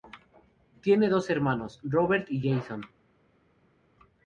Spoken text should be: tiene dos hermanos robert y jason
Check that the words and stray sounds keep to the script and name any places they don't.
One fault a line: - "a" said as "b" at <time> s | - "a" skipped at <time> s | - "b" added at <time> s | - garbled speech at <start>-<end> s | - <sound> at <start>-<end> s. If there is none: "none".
none